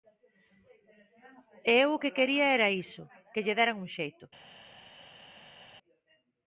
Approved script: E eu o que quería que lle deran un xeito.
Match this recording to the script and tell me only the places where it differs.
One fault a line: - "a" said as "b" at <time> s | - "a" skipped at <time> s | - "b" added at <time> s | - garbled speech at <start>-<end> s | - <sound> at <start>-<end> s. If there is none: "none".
- "era iso" added at 2.6 s